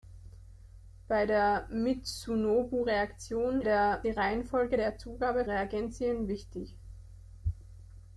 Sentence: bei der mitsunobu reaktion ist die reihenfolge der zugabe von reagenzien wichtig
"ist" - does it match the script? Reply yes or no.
no